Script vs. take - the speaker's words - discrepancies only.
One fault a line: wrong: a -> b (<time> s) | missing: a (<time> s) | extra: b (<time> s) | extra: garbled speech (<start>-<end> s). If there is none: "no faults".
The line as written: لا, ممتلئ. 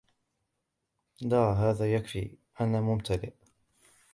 extra: هذا يكفي أنا (1.5 s)